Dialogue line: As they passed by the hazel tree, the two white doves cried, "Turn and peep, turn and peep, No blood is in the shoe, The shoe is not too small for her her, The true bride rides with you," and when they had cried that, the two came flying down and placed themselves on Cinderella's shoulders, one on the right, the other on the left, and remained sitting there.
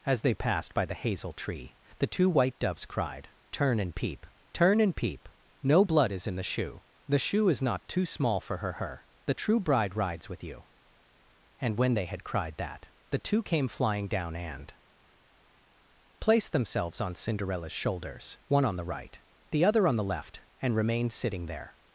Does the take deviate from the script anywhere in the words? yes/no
no